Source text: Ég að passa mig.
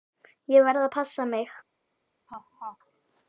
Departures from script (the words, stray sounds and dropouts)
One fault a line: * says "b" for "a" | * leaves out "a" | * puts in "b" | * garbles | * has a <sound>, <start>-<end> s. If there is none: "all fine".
* puts in "verð"
* has a laugh, 2.3-2.8 s